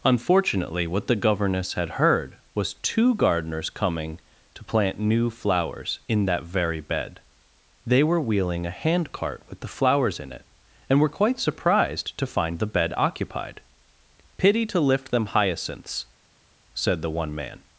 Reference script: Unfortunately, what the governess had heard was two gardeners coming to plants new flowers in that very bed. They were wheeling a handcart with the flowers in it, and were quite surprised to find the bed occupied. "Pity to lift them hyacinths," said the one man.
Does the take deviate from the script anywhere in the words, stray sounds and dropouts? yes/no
yes